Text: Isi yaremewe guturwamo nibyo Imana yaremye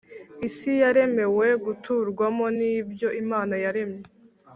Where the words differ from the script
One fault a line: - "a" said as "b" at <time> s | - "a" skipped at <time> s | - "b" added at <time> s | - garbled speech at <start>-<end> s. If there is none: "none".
none